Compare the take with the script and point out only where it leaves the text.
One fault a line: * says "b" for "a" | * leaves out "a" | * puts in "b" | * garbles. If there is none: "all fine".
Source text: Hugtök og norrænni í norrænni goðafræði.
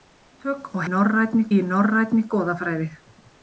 all fine